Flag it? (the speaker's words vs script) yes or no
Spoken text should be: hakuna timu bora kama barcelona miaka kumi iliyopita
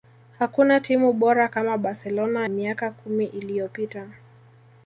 no